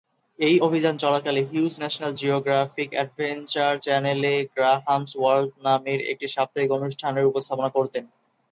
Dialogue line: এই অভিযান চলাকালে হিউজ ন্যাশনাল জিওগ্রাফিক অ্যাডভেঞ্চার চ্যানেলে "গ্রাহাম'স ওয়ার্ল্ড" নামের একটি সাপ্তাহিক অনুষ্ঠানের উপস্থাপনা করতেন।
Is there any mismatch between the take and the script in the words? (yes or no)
no